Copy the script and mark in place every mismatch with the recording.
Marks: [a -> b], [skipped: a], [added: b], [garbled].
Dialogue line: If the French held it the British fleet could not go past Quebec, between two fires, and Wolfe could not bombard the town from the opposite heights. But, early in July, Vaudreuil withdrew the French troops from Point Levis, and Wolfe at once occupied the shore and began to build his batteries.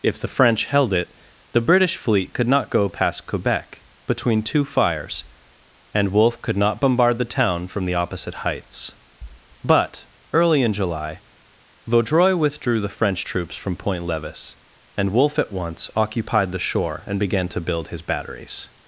If the French held it the British fleet could not go past Quebec, between two fires, and Wolfe could not bombard the town from the opposite heights. But, early in July, Vaudreuil withdrew the French troops from Point Levis, and Wolfe at once occupied the shore and began to build his batteries.